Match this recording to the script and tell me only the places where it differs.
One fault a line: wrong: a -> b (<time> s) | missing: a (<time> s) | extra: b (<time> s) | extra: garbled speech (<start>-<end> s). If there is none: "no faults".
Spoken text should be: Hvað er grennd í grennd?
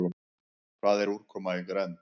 wrong: grennd -> úrkoma (1.2 s)